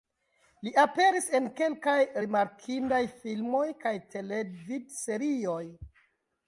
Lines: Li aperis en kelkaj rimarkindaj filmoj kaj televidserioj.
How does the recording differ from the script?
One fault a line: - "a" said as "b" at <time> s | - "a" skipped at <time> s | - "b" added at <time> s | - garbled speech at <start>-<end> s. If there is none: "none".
none